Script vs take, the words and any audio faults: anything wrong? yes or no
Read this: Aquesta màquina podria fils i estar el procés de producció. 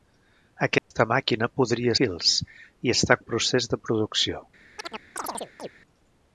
yes